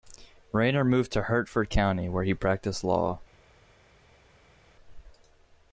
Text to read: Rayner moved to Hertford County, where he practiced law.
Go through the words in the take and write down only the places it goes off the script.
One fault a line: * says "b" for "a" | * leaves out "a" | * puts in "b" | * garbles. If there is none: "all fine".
all fine